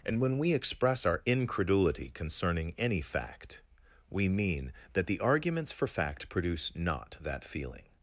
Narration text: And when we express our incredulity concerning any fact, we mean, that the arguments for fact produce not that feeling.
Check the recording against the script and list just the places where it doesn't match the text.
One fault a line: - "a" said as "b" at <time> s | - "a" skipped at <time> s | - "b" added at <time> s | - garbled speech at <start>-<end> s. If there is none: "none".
none